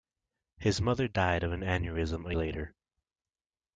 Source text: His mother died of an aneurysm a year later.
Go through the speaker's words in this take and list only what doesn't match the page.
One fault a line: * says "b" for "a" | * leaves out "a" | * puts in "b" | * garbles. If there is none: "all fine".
* leaves out "year"